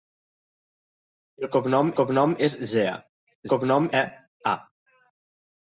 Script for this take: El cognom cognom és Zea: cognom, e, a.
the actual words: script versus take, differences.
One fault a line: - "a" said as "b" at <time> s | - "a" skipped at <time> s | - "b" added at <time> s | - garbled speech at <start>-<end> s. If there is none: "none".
none